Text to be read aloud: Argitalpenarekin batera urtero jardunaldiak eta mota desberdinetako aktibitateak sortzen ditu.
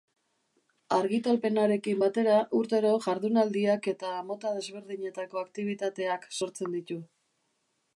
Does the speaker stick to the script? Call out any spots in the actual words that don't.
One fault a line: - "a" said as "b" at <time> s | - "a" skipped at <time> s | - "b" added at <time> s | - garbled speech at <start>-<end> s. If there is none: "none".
none